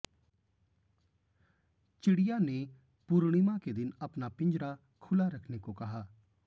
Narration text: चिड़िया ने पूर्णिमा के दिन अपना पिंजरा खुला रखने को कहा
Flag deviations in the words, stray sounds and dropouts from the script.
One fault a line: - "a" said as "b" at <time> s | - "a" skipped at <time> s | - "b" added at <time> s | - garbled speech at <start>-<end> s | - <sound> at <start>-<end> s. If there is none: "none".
none